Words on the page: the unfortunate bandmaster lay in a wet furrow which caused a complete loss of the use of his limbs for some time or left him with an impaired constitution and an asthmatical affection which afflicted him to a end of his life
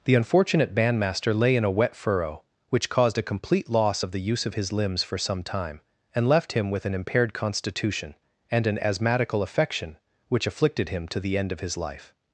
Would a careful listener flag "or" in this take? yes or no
yes